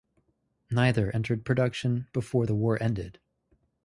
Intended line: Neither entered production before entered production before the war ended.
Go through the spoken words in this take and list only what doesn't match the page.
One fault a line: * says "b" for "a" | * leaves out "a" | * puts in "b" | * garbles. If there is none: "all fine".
* leaves out "entered production before"